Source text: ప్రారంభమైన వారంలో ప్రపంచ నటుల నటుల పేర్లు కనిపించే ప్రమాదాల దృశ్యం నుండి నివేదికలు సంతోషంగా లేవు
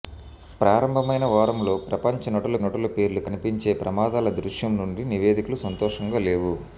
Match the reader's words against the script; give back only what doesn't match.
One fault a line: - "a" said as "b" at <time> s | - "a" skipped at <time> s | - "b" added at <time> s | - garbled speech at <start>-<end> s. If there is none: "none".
none